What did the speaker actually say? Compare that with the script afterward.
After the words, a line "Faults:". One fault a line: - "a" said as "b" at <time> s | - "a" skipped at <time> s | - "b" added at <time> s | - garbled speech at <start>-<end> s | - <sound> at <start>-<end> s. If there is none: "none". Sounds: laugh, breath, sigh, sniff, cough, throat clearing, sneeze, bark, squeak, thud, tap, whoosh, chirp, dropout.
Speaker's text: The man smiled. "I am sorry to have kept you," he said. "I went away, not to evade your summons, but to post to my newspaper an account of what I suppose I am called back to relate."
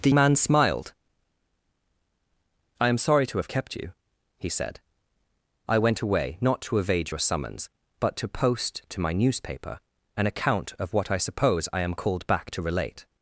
The man smiled. "I am sorry to have kept you," he said. "I went away, not to evade your summons, but to post to my newspaper an account of what I suppose I am called back to relate."
Faults:
none